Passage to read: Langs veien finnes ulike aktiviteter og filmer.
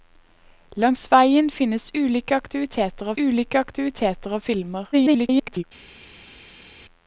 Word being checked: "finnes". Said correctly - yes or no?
yes